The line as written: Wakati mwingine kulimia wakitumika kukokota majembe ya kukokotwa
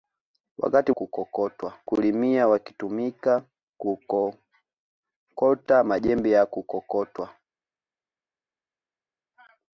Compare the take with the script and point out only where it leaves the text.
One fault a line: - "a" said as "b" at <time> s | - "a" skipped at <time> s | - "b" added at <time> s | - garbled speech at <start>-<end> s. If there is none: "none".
- "mwingine" said as "kukokotwa" at 0.9 s